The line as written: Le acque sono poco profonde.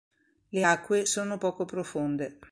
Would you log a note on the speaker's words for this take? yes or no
no